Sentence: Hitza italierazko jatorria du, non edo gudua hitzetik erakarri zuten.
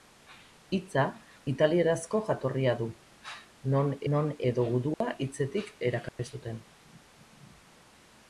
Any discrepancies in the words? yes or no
yes